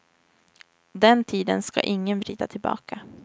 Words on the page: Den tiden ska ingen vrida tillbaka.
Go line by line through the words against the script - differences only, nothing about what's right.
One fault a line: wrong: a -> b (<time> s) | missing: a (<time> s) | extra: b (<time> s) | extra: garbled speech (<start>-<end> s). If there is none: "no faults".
no faults